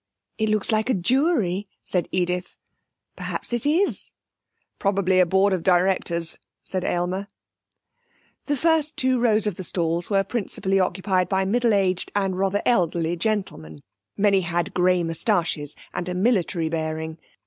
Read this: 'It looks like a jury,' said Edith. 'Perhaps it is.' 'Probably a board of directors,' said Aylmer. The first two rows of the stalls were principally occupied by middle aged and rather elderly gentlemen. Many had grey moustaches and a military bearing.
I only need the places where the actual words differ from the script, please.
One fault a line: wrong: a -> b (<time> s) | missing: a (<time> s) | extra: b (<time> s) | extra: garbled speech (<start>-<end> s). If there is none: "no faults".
no faults